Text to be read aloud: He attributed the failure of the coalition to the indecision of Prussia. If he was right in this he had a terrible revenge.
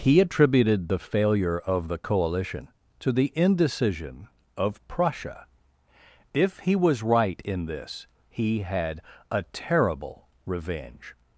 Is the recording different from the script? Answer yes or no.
no